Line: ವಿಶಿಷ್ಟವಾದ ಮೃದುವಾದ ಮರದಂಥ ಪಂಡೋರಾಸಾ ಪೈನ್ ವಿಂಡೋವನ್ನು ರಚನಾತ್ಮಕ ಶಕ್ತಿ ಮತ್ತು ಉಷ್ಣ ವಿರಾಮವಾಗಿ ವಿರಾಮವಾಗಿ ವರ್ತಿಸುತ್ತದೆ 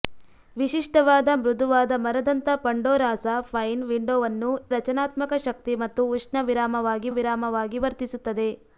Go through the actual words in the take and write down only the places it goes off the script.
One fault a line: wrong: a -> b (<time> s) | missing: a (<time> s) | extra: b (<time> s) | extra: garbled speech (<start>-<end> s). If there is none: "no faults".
no faults